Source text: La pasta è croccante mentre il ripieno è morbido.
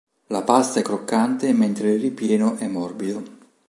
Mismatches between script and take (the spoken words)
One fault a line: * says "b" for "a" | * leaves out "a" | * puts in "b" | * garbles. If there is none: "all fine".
all fine